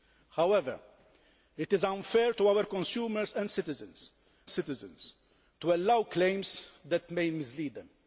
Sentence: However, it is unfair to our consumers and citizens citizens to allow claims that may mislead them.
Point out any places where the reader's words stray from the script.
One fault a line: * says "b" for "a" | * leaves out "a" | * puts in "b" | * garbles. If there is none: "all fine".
all fine